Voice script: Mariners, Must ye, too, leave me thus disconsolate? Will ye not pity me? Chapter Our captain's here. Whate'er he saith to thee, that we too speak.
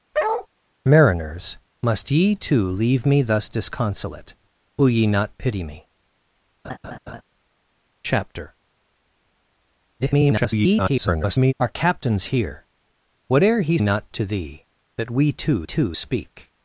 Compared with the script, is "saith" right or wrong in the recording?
wrong